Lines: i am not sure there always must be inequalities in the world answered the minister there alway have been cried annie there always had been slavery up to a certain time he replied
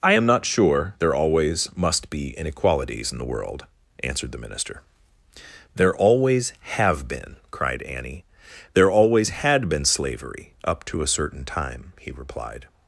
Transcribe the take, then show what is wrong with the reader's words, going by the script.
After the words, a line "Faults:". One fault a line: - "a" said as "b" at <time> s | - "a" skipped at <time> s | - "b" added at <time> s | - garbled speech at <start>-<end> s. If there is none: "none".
i am not sure there always must be inequalities in the world answered the minister there always have been cried annie there always had been slavery up to a certain time he replied
Faults:
- "alway" said as "always" at 5.9 s